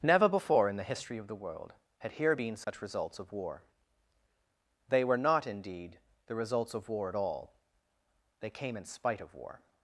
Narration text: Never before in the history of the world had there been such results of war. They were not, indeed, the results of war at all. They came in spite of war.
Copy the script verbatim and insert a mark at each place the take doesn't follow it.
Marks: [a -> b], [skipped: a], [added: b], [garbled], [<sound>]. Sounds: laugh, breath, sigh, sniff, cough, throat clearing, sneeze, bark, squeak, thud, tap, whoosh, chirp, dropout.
Never before in the history of the world had [there -> here] been such [dropout] results of war. They were not, indeed, the results of war at all. They came in spite of war.